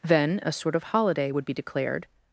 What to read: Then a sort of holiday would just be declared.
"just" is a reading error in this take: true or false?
true